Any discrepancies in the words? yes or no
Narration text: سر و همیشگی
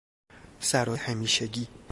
no